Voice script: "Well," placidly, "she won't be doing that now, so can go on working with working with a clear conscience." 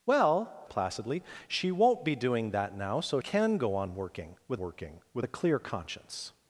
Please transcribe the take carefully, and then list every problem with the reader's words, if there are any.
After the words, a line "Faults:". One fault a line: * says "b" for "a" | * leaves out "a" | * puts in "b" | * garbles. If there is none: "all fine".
"Well," placidly, "she won't be doing that now, so can go on working with working with a clear conscience."
Faults:
all fine